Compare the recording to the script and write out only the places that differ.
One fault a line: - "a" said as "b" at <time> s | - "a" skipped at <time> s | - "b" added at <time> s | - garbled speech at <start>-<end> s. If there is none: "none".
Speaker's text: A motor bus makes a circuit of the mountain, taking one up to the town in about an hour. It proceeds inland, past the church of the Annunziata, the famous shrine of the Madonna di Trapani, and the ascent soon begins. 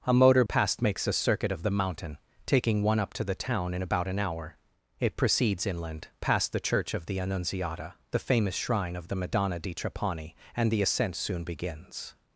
- "bus" said as "past" at 0.5 s